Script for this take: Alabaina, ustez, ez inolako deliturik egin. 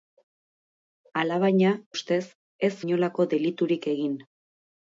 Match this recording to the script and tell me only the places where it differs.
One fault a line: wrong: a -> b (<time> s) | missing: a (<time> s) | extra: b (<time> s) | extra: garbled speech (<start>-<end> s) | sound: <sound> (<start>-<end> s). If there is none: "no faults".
no faults